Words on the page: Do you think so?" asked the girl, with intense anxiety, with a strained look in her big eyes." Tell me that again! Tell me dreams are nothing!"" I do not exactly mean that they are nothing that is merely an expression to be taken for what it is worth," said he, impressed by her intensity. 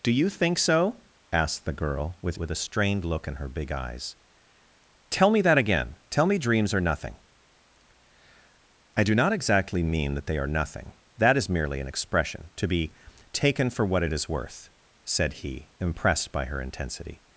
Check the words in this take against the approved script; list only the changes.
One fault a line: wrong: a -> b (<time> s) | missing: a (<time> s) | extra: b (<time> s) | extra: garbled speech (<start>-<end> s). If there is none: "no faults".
missing: intense anxiety (2.4 s)